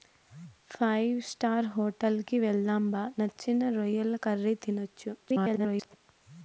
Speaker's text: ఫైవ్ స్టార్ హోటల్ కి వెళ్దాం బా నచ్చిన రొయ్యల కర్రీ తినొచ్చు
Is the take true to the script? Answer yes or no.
no